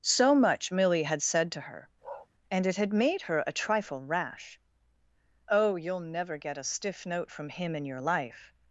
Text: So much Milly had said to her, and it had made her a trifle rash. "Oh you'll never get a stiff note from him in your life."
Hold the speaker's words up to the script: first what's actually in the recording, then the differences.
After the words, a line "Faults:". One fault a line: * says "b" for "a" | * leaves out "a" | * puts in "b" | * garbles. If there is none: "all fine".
So much Milly had said to her, and it had made her a trifle rash. "Oh you'll never get a stiff note from him in your life."
Faults:
all fine